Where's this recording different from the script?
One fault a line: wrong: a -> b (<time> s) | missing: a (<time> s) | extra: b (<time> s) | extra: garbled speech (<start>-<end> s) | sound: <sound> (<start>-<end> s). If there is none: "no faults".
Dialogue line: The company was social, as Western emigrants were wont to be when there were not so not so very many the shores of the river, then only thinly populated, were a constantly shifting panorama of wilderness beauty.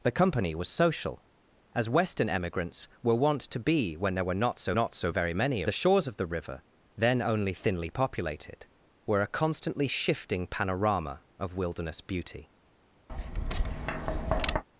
sound: tap (13.1-14.6 s)